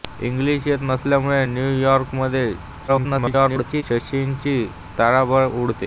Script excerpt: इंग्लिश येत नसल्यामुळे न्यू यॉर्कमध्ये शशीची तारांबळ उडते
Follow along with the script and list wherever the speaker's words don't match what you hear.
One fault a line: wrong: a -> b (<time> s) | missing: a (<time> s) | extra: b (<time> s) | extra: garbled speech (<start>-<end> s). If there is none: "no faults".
extra: garbled speech (2.9-3.8 s)